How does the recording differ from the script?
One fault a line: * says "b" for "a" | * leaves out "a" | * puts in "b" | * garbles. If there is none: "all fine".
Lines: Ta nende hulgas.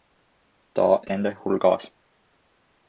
all fine